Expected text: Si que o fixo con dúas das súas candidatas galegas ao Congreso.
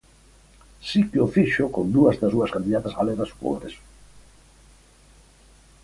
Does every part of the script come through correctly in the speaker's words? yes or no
yes